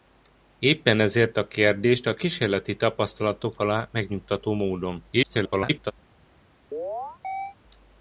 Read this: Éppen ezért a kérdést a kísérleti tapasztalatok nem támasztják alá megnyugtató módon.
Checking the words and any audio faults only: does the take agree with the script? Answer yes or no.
no